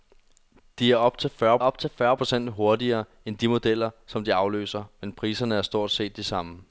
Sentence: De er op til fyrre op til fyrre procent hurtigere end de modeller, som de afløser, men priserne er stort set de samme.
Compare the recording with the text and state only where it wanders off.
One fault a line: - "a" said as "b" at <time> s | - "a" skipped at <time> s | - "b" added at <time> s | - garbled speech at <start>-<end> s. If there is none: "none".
none